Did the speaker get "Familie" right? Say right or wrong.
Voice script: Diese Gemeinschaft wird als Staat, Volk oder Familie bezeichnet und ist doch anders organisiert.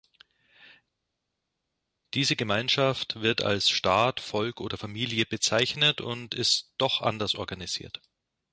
right